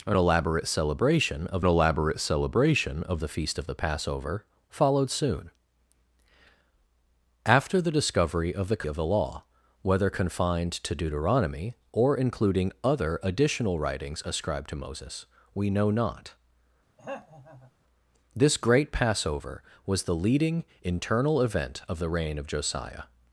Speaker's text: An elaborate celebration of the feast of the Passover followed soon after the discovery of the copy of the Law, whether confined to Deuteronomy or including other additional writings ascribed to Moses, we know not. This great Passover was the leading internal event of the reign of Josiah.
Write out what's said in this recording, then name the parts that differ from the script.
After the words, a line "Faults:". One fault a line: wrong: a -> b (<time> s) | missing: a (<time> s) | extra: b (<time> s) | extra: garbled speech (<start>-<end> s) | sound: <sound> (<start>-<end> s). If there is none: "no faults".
An elaborate celebration of elaborate celebration of the feast of the Passover followed soon after the discovery of the of the Law, whether confined to Deuteronomy or including other additional writings ascribed to Moses, we know not. This great Passover was the leading internal event of the reign of Josiah.
Faults:
extra: elaborate celebration of (1.6 s)
missing: copy (8.8 s)
sound: throat clearing (17.0-17.7 s)